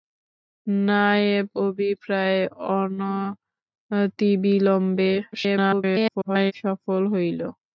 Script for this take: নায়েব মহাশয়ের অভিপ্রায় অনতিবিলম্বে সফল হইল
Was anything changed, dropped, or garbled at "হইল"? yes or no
no